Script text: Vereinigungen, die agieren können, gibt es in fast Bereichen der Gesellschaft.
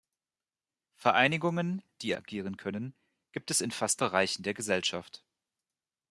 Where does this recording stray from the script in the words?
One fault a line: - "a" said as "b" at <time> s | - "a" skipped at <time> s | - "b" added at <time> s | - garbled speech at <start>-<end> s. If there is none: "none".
none